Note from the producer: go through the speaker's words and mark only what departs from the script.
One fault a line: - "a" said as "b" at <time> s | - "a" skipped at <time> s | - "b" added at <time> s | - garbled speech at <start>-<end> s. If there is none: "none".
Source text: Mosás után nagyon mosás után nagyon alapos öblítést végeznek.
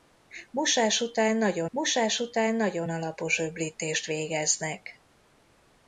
none